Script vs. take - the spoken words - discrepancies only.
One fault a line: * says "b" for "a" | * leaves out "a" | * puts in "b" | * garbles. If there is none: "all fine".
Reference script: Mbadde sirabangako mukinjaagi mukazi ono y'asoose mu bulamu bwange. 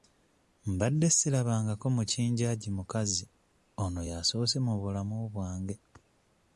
all fine